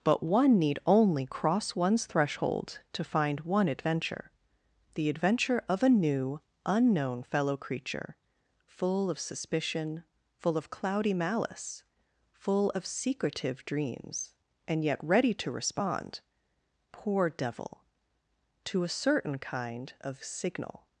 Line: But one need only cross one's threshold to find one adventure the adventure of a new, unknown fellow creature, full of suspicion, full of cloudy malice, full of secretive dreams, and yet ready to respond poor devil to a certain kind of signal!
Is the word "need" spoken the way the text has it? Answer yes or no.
yes